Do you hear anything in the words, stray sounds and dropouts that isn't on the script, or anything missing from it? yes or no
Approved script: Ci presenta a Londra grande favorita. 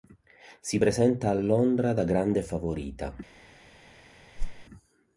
yes